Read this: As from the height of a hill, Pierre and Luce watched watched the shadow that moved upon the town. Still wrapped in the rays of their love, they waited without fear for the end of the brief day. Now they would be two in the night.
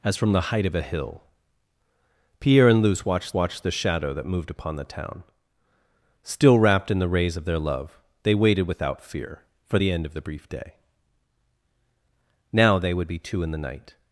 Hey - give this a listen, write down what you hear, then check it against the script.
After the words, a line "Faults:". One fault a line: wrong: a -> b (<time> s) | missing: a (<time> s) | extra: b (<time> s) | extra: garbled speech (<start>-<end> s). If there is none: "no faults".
As from the height of a hill, Pierre and Luce watched watched the shadow that moved upon the town. Still wrapped in the rays of their love, they waited without fear for the end of the brief day. Now they would be two in the night.
Faults:
no faults